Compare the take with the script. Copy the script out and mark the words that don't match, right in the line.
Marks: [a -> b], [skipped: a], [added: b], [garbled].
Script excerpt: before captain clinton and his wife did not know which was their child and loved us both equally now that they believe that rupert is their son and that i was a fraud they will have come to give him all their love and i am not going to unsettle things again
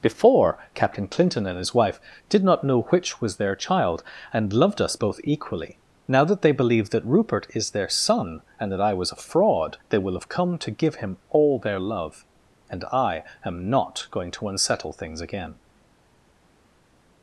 before captain clinton and his wife did not know which was their child and loved us both equally now that they believe that rupert is their son and that i was a fraud they will have come to give him all their love and i am not going to unsettle things again